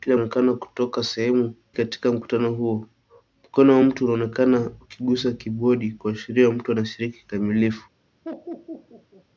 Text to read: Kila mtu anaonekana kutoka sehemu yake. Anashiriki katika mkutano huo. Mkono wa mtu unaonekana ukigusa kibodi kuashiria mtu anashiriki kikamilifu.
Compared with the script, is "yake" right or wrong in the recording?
wrong